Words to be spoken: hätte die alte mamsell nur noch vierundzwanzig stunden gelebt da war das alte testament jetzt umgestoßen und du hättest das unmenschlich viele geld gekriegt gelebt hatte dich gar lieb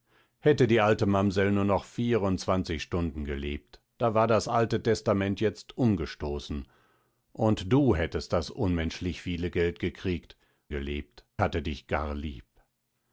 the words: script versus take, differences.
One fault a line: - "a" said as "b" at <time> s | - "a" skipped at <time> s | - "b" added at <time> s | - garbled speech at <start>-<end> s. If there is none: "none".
none